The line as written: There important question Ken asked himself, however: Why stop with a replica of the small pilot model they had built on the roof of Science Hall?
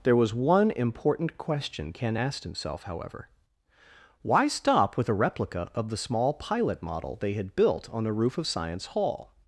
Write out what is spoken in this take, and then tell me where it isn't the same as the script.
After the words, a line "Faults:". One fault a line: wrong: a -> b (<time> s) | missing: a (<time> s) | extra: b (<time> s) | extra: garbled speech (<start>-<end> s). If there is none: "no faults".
There was one important question Ken asked himself, however: Why stop with a replica of the small pilot model they had built on the roof of Science Hall?
Faults:
extra: was one (0.1 s)